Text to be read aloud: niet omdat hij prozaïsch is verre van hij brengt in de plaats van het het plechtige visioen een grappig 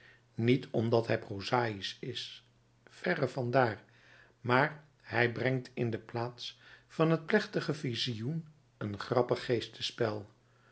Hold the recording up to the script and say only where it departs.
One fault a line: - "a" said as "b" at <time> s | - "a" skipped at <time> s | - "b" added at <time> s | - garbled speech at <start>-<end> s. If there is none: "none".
- "daar maar" added at 3.5 s
- "het" skipped at 7.3 s